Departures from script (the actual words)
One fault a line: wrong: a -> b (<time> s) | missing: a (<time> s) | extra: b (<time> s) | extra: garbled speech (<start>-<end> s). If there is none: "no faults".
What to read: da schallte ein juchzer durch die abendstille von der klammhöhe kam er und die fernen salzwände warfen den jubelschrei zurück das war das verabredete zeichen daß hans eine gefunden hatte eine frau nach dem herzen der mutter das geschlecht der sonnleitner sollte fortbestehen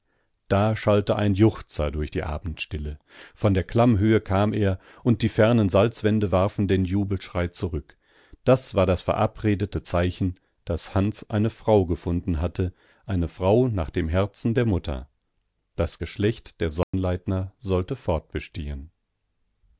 extra: frau (11.5 s)